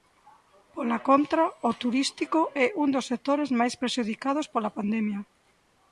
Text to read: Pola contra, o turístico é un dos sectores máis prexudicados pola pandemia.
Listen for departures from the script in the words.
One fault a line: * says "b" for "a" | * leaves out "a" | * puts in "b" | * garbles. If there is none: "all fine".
all fine